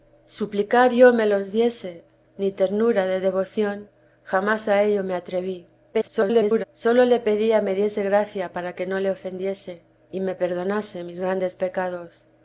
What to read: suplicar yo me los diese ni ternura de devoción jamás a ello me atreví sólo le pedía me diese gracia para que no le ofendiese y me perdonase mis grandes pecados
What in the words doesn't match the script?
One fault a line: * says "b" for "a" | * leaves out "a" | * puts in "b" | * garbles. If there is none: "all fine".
* garbles